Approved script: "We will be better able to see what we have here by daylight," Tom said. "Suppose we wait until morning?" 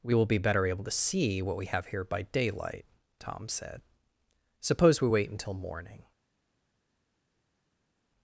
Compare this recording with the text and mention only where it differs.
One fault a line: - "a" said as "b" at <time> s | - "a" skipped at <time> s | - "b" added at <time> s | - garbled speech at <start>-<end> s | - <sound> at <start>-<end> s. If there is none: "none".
none